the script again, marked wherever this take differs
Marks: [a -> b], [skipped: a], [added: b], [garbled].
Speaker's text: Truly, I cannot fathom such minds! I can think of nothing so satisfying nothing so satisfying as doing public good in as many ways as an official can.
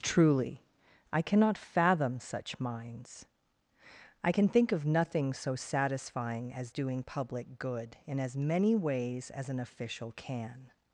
Truly, I cannot fathom such minds! I can think of nothing so satisfying [skipped: nothing so satisfying] as doing public good in as many ways as an official can.